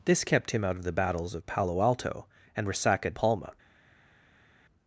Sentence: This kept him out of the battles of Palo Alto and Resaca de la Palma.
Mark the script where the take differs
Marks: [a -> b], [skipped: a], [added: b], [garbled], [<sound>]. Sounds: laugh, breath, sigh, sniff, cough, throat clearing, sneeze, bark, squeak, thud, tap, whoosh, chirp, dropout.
This kept him out of the battles of Palo Alto and Resaca [skipped: de la] Palma.